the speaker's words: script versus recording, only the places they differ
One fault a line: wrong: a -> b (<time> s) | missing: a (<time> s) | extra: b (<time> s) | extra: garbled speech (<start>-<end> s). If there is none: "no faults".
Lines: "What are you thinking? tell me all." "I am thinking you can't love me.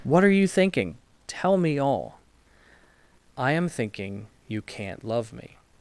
no faults